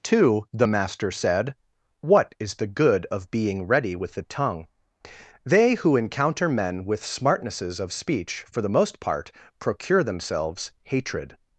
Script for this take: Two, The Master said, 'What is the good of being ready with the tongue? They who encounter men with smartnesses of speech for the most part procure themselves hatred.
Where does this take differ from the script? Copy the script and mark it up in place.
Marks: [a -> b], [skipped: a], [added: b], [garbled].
Two, The Master said, 'What is the good of being ready with the tongue? They who encounter men with smartnesses of speech for the most part procure themselves hatred.